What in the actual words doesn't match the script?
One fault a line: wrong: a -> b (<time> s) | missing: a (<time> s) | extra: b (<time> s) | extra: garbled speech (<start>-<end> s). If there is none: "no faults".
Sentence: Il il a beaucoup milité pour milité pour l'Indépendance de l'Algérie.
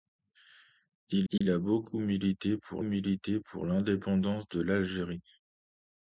no faults